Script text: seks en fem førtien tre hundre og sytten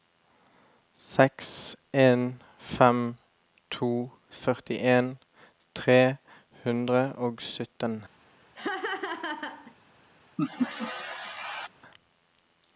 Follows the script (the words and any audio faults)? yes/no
no